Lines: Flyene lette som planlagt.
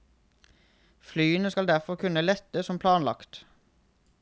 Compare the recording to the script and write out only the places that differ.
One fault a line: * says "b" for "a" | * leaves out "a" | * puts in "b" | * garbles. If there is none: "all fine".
* puts in "skal derfor kunne"